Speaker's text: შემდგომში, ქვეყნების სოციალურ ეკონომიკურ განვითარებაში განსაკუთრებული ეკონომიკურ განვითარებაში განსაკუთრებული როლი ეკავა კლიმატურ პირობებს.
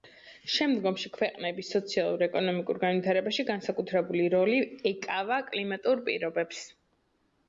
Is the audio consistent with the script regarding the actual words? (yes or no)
no